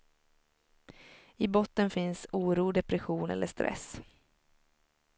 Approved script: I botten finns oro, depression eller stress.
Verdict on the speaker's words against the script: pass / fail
pass